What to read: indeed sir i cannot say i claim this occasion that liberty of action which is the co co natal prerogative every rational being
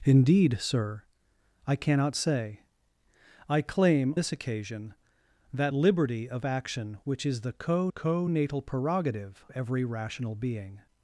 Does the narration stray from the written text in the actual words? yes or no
no